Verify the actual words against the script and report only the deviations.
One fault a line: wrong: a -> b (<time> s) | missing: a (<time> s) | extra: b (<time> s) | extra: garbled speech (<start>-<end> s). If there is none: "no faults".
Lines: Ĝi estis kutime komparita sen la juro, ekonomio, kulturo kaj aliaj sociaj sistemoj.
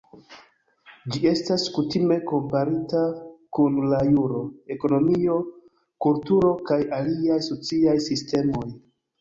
wrong: estis -> estas (1.3 s)
wrong: sen -> kun (3.6 s)